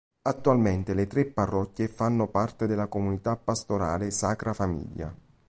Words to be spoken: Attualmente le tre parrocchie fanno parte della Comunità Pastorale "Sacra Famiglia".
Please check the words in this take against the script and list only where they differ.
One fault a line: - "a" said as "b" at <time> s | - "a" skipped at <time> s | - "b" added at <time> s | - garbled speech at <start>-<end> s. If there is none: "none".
none